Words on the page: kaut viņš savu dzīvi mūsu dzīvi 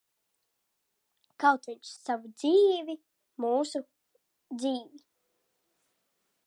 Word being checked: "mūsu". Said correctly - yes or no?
yes